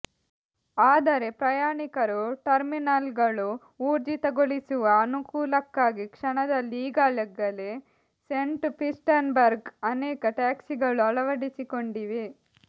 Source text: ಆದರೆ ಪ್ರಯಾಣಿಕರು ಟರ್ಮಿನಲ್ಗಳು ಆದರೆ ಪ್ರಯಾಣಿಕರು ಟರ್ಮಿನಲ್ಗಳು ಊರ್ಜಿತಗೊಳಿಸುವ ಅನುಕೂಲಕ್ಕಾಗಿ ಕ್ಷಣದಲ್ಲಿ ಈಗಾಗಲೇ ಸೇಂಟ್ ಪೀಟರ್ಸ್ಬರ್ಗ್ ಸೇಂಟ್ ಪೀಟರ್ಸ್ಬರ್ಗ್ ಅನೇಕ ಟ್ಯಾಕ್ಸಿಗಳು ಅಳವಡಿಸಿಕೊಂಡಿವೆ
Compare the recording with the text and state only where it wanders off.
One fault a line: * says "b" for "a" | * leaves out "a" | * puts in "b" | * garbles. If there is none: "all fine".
* leaves out "ಆದರೆ ಪ್ರಯಾಣಿಕರು ಟರ್ಮಿನಲ್ಗಳು"
* leaves out "ಸೇಂಟ್ ಪೀಟರ್ಸ್ಬರ್ಗ್"